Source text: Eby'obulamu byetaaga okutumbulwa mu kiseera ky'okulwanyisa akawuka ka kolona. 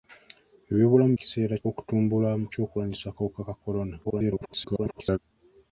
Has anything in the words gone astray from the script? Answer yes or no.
yes